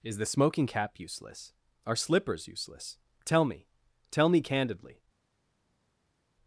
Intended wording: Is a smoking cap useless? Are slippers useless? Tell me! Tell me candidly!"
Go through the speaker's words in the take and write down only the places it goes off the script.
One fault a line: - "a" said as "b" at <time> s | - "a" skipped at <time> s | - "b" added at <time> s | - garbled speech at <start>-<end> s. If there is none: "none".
- "a" said as "the" at 0.2 s